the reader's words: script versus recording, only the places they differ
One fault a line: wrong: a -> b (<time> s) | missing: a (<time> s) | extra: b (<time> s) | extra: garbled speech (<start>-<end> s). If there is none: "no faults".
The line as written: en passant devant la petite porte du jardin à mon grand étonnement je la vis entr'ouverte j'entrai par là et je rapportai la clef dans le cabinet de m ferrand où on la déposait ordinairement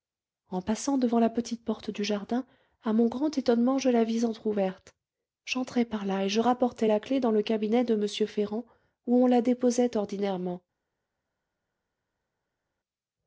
no faults